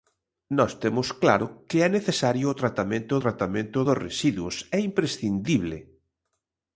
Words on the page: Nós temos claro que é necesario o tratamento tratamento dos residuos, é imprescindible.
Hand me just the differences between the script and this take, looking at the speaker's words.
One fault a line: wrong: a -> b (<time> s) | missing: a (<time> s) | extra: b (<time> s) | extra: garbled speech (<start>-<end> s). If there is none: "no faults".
no faults